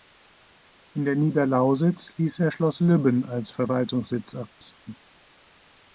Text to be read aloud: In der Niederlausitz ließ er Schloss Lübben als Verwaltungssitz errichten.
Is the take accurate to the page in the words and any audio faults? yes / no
no